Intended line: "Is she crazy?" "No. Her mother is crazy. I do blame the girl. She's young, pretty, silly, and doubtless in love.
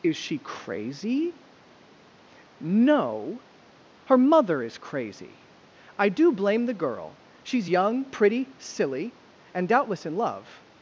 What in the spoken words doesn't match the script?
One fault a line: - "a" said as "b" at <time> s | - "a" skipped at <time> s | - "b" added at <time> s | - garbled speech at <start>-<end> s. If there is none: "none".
none